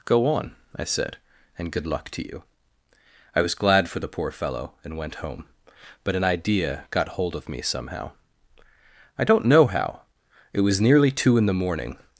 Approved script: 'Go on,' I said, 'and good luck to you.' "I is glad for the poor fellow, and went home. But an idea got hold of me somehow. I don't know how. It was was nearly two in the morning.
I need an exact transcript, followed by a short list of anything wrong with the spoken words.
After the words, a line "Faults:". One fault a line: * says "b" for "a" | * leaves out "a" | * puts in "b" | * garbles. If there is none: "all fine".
'Go on,' I said, 'and good luck to you.' "I was glad for the poor fellow, and went home. But an idea got hold of me somehow. I don't know how. It was nearly two in the morning.
Faults:
* says "was" for "is"
* leaves out "was"